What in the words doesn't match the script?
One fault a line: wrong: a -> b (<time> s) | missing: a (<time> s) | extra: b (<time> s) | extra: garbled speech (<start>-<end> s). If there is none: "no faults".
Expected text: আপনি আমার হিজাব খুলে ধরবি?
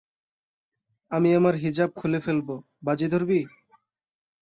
wrong: আপনি -> আমি (1.1 s)
extra: ফেলব বাজি (2.2 s)